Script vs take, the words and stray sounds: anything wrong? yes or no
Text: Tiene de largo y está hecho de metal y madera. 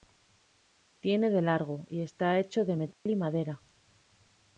yes